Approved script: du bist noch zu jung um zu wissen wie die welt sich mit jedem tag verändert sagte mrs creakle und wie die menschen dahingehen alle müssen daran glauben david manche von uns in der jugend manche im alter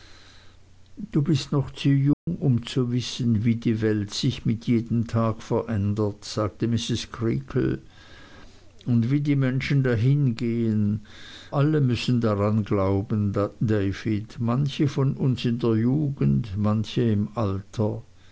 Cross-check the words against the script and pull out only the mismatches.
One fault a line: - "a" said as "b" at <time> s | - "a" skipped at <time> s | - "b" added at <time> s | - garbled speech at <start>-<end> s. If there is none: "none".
none